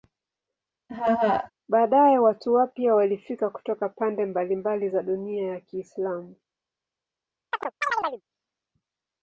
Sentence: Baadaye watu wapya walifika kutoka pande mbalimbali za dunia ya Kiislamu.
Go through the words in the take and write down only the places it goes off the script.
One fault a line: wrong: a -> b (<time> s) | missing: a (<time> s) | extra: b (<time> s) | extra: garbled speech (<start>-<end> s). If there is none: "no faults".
no faults